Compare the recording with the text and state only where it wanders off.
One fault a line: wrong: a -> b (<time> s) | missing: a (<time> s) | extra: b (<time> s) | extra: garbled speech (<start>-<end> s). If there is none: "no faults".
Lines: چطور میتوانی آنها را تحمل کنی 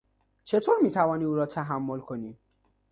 wrong: آنها -> او (1.2 s)